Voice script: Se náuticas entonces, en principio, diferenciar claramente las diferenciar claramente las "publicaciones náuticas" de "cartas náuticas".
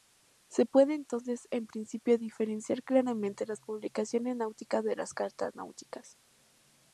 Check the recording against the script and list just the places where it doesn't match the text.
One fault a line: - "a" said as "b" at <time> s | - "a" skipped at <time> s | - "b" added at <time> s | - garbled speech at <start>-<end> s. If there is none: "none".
- "náuticas" said as "puede" at 0.7 s
- "diferenciar claramente las" skipped at 3.6 s
- "las" added at 5.0 s